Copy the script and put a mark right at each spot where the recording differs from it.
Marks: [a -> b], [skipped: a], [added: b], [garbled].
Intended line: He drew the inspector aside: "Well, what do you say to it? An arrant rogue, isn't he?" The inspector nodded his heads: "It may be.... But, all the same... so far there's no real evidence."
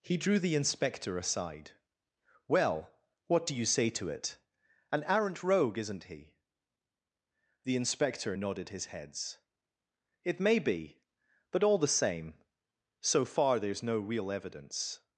He drew the inspector aside: "Well, what do you say to it? An arrant rogue, isn't he?" The inspector nodded his heads: "It may be.... But, all the same... so far there's no real evidence."